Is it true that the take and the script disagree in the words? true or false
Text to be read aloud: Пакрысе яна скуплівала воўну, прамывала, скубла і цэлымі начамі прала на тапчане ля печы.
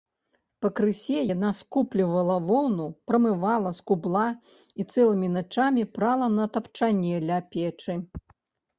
false